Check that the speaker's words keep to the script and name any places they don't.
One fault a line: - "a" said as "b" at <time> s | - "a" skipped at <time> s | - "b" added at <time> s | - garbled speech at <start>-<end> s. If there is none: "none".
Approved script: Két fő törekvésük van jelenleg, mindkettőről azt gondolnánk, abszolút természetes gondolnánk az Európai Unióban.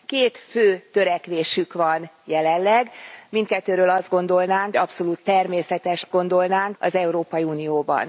none